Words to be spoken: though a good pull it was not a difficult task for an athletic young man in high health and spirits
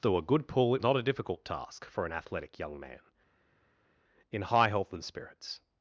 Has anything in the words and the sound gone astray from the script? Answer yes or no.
yes